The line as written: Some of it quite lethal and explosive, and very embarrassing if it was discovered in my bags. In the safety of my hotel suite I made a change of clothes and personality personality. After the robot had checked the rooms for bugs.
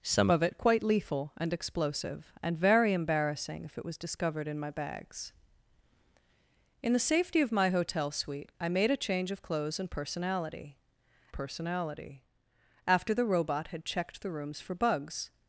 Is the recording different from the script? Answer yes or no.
no